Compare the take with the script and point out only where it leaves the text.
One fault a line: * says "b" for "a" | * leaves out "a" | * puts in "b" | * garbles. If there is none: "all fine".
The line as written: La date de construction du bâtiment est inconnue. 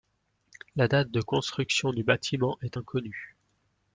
all fine